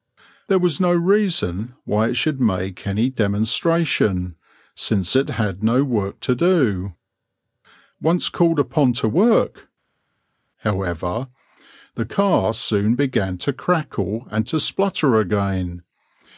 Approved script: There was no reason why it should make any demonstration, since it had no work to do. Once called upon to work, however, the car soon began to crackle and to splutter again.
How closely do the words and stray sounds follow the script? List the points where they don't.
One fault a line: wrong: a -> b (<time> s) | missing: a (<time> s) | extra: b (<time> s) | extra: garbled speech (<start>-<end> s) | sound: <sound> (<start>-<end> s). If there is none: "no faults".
no faults